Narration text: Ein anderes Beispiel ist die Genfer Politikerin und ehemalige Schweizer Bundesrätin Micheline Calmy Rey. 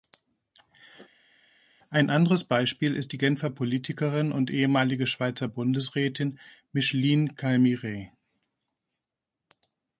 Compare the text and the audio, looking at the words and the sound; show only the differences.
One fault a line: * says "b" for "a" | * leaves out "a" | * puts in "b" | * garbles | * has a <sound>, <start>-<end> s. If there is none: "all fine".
all fine